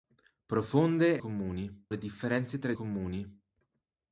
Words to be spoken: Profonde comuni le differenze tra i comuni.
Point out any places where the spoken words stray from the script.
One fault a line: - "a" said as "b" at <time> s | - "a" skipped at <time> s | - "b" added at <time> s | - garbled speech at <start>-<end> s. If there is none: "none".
none